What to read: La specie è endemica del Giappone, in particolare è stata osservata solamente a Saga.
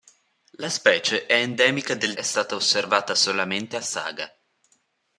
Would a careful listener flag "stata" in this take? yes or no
no